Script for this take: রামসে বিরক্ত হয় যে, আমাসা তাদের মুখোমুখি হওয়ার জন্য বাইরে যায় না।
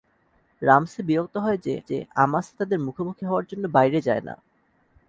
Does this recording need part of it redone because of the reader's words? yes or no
yes